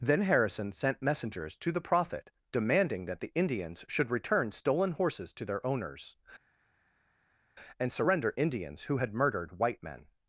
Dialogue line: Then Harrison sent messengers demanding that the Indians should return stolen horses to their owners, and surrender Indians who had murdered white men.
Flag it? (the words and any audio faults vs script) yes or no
yes